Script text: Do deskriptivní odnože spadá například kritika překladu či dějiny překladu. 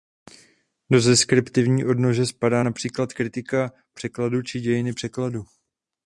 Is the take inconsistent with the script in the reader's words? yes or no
no